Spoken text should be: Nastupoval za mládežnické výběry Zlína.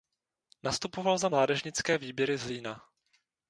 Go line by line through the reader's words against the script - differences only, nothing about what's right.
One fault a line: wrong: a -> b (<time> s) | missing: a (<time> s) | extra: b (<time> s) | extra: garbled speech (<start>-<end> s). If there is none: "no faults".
no faults